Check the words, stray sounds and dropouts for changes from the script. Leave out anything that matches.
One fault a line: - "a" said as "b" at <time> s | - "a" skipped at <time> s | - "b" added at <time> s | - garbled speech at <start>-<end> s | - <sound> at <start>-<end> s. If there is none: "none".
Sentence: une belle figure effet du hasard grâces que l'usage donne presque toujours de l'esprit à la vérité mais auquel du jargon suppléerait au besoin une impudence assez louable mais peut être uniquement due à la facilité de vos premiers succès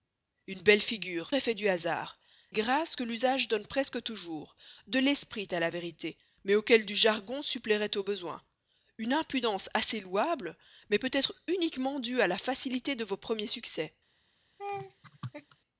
- laugh at 14.6-15.6 s